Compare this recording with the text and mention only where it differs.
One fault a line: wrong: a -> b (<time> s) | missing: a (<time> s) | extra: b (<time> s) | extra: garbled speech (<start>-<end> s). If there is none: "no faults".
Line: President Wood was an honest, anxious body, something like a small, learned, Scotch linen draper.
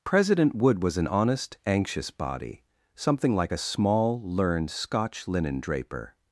no faults